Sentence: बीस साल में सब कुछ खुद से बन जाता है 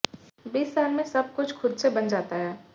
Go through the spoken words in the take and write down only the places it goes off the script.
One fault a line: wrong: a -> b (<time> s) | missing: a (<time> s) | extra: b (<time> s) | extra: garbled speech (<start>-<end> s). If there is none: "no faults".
no faults